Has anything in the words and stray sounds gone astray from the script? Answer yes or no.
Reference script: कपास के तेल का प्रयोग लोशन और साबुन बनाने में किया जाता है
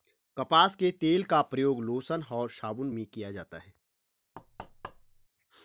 yes